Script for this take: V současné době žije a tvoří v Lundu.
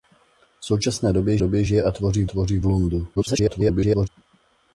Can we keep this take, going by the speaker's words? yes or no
no